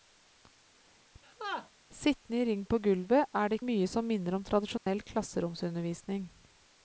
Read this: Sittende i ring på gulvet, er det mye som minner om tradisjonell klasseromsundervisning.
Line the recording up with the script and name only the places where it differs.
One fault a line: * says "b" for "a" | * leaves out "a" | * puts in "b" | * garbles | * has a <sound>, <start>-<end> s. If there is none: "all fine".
* has a laugh, 1.2-1.7 s
* has a dropout, 4.8-4.9 s